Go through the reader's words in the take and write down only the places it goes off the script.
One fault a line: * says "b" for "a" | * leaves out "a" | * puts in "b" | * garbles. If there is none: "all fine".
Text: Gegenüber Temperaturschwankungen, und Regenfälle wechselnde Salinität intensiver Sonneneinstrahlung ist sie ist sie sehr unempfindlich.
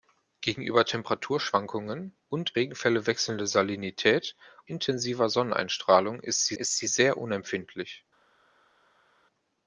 all fine